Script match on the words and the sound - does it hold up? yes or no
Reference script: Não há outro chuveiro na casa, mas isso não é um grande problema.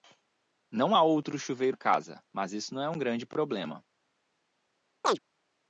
no